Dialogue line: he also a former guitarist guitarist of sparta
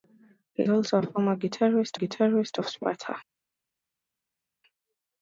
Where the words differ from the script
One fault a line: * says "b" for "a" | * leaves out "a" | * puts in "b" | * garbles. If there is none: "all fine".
all fine